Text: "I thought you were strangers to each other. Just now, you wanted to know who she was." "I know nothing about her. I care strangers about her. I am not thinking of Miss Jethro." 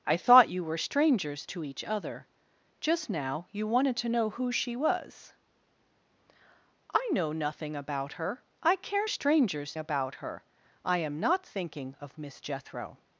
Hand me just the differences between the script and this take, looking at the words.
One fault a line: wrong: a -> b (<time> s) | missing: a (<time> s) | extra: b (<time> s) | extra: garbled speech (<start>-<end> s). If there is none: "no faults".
no faults